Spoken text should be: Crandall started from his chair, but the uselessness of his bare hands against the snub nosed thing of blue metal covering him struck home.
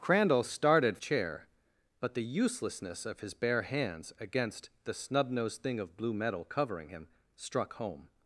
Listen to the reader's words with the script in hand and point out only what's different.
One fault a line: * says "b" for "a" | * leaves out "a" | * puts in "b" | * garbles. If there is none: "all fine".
* leaves out "from his"